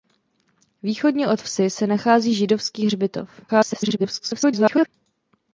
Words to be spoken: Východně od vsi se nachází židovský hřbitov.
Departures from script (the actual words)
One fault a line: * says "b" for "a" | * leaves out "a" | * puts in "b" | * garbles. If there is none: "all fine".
* garbles